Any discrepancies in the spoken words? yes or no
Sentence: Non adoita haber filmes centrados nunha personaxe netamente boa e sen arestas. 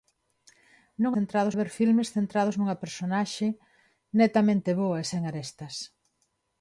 yes